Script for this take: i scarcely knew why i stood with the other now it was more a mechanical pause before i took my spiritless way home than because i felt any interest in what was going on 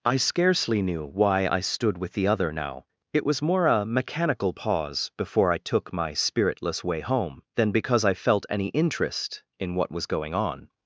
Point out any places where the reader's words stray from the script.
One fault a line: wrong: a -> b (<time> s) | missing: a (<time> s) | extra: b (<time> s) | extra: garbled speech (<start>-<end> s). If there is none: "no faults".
no faults